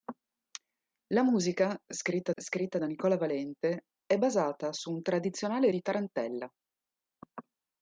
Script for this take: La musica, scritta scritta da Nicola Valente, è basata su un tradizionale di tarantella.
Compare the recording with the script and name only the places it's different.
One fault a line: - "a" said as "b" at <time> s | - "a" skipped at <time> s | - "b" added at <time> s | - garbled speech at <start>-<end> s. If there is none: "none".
none